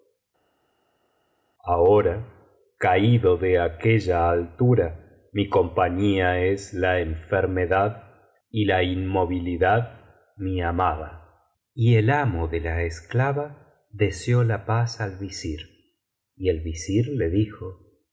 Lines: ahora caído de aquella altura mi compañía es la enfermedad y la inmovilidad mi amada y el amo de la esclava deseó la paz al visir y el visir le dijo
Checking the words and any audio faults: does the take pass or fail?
pass